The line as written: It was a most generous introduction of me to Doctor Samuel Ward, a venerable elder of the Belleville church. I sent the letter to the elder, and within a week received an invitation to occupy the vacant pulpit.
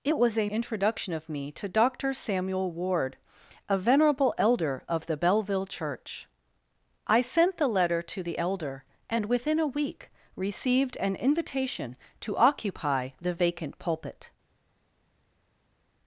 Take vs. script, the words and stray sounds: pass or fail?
fail